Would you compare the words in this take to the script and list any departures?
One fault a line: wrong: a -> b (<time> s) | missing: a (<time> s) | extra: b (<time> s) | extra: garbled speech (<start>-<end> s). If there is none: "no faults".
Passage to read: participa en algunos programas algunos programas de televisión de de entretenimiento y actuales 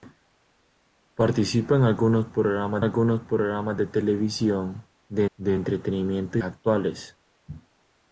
no faults